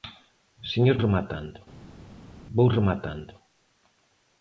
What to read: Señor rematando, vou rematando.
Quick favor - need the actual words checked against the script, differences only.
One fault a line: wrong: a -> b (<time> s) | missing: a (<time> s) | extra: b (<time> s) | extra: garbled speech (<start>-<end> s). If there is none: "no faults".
no faults